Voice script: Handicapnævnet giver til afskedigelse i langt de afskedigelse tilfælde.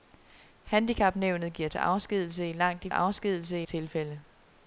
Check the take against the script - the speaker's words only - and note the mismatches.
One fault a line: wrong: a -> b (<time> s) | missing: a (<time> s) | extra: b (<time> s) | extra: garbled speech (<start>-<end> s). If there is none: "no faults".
no faults